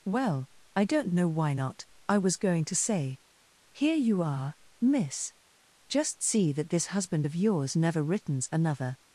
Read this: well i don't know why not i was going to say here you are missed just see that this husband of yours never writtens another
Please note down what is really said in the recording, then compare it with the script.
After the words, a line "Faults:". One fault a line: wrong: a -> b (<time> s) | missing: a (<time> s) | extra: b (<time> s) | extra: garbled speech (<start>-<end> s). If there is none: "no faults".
well i don't know why not i was going to say here you are miss just see that this husband of yours never writtens another
Faults:
wrong: missed -> miss (4.8 s)